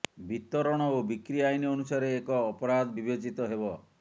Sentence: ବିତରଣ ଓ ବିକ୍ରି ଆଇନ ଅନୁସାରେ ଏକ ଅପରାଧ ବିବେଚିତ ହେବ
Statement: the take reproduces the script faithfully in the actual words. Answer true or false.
true